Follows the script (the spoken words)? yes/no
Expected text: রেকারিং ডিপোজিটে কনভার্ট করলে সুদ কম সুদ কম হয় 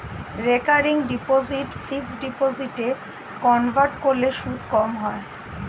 no